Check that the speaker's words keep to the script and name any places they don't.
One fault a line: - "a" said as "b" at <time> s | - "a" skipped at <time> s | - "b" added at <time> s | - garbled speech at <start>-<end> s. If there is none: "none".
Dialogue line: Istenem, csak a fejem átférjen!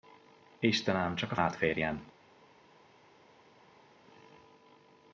- "fejem" skipped at 1.4 s